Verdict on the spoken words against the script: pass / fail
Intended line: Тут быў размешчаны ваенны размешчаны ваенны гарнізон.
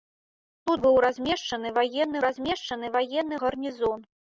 pass